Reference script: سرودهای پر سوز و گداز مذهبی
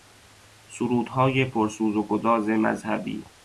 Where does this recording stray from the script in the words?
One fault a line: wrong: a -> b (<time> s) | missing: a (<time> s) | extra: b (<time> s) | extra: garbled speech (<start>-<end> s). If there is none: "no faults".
no faults